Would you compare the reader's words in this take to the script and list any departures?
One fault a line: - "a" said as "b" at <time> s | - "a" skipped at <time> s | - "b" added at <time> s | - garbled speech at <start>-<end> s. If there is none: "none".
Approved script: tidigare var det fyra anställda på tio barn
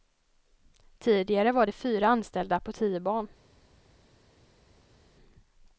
none